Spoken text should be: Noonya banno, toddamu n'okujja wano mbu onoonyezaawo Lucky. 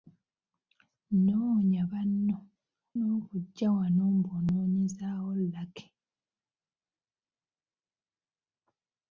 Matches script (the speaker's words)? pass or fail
fail